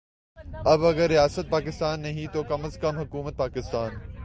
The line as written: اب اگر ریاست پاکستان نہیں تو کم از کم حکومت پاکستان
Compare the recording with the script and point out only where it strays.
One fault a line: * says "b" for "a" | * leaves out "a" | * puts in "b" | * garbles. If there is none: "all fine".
all fine